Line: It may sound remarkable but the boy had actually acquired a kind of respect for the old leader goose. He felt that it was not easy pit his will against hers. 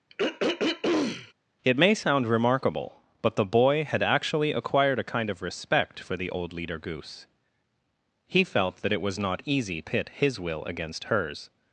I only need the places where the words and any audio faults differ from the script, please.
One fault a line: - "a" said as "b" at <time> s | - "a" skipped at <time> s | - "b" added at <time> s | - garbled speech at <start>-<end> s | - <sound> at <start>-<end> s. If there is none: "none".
- throat clearing at 0.1-1.3 s